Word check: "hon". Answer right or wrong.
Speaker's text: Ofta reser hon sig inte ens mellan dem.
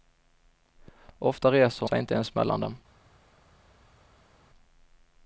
wrong